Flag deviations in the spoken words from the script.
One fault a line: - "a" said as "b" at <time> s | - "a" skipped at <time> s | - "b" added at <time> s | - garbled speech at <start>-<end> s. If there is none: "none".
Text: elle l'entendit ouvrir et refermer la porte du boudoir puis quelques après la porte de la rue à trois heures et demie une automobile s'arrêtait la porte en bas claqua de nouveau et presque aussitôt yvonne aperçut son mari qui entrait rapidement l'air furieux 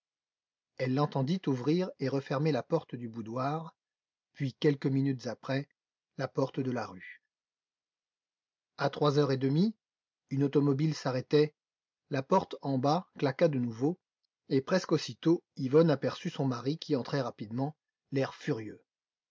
- "minutes" added at 4.9 s